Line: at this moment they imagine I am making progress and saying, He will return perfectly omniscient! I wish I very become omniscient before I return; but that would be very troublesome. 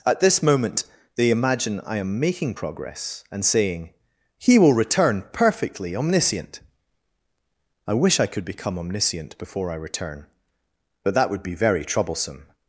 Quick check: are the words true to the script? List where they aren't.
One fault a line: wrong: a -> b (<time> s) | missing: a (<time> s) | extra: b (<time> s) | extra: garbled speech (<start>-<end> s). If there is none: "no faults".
wrong: very -> could (8.3 s)